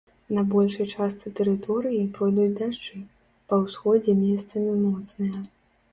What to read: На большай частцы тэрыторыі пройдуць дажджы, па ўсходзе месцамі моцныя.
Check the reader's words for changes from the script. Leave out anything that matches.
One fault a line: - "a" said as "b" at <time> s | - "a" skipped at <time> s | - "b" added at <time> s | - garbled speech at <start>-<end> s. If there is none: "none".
none